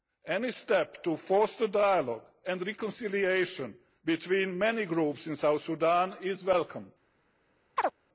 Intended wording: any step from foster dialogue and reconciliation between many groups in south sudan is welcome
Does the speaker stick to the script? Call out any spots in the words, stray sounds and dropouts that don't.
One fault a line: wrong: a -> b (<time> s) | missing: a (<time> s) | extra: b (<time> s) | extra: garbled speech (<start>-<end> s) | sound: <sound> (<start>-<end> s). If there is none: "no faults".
wrong: from -> to (1.0 s)
sound: chirp (7.8-7.9 s)